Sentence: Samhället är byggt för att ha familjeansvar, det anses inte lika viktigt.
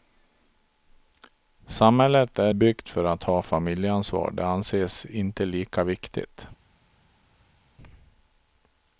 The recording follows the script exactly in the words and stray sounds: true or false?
true